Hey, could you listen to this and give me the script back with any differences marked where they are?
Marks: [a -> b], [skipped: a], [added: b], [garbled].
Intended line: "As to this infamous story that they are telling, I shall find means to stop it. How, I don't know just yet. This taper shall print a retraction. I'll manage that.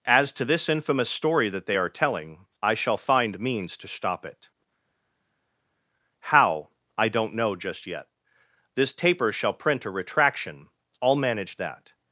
"As to this infamous story that they are telling, I shall find means to stop it. How, I don't know just yet. This taper shall print a retraction. I'll manage that.